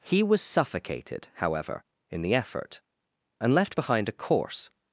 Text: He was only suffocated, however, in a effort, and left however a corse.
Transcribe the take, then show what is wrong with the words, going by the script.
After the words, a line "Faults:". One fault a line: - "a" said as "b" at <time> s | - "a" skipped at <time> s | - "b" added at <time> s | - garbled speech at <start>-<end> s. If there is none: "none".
He was suffocated, however, in the effort, and left behind a corse.
Faults:
- "only" skipped at 0.4 s
- "a" said as "the" at 2.2 s
- "however" said as "behind" at 3.7 s